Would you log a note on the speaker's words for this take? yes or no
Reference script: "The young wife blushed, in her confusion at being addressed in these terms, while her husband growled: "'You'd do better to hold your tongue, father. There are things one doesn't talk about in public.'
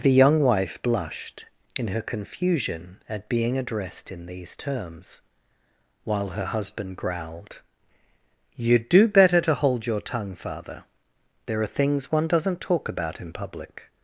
no